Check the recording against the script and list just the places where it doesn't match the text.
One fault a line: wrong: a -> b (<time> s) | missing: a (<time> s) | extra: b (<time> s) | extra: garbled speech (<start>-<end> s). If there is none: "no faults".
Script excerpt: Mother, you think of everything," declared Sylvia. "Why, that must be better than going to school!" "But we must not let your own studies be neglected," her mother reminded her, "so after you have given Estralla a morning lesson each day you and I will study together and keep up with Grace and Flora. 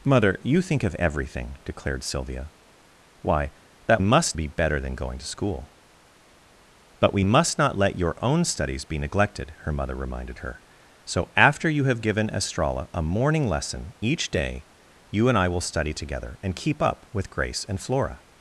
no faults